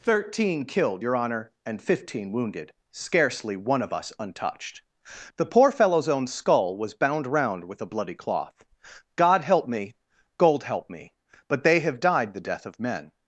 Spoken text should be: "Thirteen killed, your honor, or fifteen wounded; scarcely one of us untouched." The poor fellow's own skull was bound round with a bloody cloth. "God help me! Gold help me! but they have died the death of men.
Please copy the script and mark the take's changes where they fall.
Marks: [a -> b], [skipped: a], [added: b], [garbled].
"Thirteen killed, your honor, [or -> and] fifteen wounded; scarcely one of us untouched." The poor fellow's own skull was bound round with a bloody cloth. "God help me! Gold help me! but they have died the death of men.